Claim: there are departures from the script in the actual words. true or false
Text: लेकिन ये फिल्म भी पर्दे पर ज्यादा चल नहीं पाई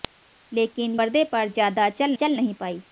true